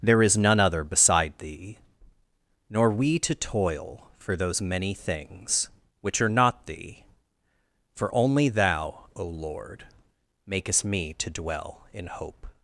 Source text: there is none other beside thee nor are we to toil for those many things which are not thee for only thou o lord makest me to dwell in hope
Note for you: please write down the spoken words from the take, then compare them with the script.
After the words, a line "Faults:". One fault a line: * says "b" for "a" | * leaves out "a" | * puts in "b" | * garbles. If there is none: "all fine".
there is none other beside thee nor we to toil for those many things which are not thee for only thou o lord makest me to dwell in hope
Faults:
* leaves out "are"